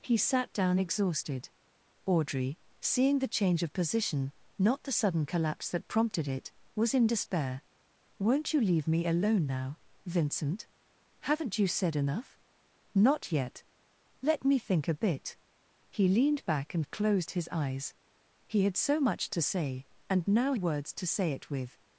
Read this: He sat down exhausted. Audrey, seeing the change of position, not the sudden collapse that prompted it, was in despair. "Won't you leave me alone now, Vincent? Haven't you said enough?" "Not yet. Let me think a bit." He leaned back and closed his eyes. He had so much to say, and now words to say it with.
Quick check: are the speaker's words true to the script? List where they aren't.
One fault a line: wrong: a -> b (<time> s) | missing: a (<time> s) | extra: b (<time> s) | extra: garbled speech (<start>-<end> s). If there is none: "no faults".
no faults